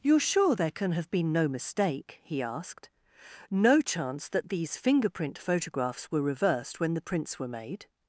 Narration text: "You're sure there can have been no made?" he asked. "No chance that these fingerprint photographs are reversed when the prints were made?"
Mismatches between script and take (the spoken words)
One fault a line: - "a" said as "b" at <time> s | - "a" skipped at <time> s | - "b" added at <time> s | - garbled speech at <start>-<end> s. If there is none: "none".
- "made" said as "mistake" at 1.5 s
- "are" said as "were" at 6.1 s